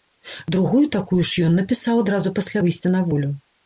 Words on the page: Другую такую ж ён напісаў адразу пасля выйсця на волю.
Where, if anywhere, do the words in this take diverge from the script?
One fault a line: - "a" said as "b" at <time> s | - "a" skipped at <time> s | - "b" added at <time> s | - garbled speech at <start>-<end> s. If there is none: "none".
none